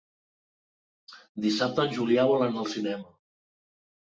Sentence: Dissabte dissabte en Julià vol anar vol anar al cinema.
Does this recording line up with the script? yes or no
no